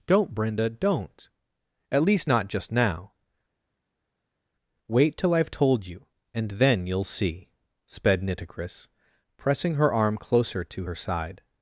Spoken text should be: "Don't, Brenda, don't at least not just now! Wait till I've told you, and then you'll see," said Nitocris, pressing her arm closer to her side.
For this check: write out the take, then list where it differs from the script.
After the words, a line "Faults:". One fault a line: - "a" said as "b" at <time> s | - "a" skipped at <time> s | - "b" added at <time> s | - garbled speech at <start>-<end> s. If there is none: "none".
"Don't, Brenda, don't at least not just now! Wait till I've told you, and then you'll see," sped Nitocris, pressing her arm closer to her side.
Faults:
- "said" said as "sped" at 7.9 s